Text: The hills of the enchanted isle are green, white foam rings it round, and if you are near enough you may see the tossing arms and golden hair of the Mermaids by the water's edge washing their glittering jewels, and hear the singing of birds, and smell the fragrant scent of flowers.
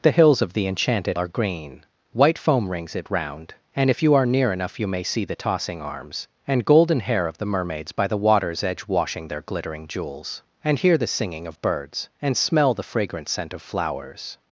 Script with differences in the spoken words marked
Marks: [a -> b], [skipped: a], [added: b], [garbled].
The hills of the enchanted [skipped: isle] are green, white foam rings it round, and if you are near enough you may see the tossing arms and golden hair of the Mermaids by the water's edge washing their glittering jewels, and hear the singing of birds, and smell the fragrant scent of flowers.